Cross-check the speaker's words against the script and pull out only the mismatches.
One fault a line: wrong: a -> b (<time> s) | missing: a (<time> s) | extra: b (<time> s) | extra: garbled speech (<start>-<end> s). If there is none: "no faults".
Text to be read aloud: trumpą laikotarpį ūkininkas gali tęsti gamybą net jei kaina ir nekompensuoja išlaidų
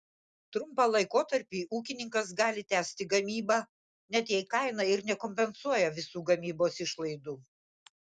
extra: visų gamybos (6.0 s)